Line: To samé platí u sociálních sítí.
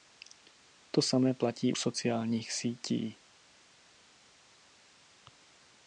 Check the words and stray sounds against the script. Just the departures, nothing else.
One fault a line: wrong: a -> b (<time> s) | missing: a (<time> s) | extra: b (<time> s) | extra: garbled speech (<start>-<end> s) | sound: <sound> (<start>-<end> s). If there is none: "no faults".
missing: u (1.7 s)